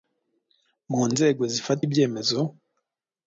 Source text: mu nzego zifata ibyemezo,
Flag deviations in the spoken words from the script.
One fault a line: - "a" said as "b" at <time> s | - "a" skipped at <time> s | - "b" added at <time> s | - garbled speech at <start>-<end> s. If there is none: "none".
none